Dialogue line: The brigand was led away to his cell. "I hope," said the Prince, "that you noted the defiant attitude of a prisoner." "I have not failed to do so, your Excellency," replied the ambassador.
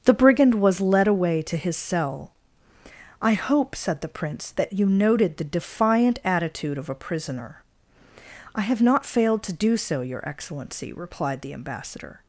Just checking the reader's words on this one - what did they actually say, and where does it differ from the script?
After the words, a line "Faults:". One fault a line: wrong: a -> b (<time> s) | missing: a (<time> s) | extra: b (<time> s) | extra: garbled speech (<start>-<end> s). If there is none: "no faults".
The brigand was led away to his cell. "I hope," said the Prince, "that you noted the defiant attitude of a prisoner." "I have not failed to do so, your Excellency," replied the ambassador.
Faults:
no faults